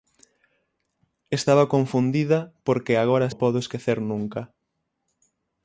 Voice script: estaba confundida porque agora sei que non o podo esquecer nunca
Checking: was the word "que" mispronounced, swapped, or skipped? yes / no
yes